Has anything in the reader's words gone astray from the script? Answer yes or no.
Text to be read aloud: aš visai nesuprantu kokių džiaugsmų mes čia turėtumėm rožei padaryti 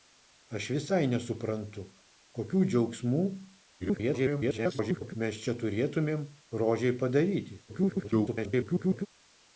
yes